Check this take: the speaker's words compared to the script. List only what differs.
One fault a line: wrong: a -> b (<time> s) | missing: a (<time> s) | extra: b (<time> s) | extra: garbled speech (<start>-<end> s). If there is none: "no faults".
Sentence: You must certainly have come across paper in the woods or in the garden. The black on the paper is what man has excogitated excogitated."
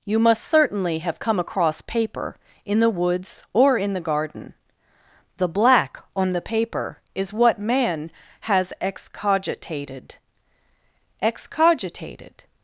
no faults